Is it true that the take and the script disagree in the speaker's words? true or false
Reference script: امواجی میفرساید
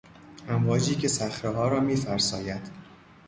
true